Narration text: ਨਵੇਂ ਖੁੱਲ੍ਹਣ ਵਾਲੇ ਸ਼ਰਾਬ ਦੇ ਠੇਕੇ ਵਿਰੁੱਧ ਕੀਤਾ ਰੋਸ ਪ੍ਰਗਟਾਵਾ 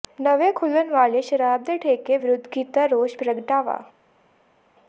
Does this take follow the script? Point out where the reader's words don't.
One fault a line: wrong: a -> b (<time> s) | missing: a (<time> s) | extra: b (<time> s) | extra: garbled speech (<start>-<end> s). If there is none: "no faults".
no faults